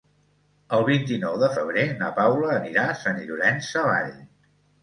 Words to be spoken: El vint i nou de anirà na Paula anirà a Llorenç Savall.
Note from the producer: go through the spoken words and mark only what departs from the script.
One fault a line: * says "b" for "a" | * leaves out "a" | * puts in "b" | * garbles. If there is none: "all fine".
* says "febrer" for "anirà"
* puts in "Sant"